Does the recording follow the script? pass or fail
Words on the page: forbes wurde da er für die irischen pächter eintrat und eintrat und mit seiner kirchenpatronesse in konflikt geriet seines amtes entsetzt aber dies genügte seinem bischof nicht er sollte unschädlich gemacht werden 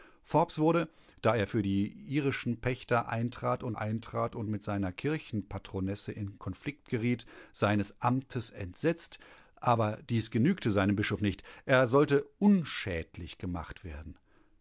pass